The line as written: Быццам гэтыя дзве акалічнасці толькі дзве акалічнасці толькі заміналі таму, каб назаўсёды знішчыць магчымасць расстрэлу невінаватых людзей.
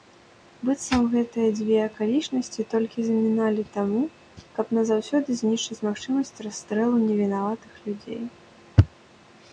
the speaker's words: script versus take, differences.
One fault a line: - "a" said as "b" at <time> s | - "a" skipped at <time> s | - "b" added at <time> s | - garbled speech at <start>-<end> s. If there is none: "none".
- "дзве акалічнасці толькі" skipped at 3.0 s